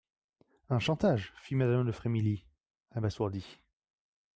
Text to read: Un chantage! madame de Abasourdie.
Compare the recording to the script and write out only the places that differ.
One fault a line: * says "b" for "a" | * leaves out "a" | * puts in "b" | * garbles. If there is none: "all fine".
* puts in "fit"
* puts in "Frémilly"